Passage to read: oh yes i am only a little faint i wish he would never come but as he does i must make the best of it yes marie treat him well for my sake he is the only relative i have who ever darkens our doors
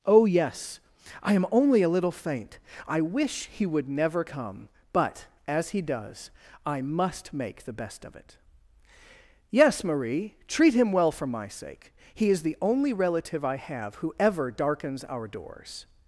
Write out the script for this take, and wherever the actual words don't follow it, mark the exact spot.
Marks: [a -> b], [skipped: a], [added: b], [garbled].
oh yes i am only a little faint i wish he would never come but as he does i must make the best of it yes marie treat him well for my sake he is the only relative i have who ever darkens our doors